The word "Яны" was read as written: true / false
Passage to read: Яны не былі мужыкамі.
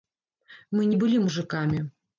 false